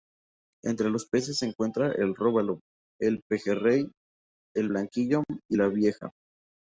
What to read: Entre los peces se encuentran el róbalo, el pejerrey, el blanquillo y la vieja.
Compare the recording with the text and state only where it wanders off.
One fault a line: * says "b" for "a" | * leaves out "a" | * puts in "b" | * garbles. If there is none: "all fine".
all fine